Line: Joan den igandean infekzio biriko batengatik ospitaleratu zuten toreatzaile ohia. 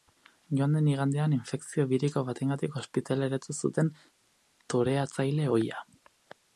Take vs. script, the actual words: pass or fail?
pass